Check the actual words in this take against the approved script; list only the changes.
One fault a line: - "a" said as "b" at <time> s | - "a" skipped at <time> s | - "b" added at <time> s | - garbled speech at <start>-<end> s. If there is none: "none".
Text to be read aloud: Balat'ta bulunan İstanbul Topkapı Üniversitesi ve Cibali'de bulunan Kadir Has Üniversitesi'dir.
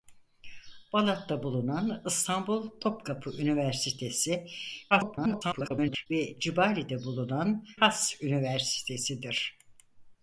- garbled speech at 4.9-6.1 s
- "Kadir" skipped at 7.7 s